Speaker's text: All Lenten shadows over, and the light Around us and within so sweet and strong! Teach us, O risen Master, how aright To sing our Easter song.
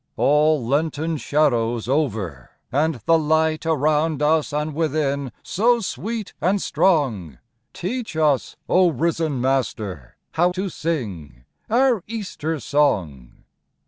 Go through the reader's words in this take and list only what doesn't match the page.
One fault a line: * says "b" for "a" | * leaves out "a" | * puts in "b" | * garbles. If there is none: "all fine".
* leaves out "aright"